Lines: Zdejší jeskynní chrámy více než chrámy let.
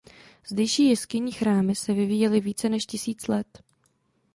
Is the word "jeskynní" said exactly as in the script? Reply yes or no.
yes